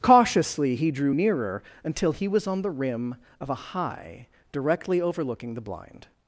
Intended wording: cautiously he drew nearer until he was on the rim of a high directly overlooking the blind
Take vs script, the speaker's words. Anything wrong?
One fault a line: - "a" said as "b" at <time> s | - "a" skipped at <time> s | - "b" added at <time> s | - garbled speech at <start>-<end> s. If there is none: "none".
none